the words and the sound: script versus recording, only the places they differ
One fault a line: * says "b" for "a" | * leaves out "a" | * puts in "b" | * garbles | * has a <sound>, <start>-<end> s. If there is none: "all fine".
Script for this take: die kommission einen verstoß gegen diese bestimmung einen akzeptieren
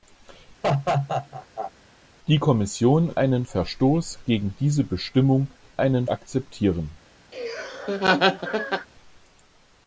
* has a laugh, 0.6-1.7 s
* has a laugh, 7.3-8.9 s